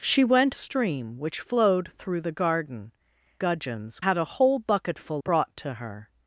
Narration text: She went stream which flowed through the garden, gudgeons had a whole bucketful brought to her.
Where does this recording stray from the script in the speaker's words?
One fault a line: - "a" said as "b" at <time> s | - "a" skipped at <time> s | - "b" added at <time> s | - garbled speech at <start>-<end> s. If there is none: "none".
none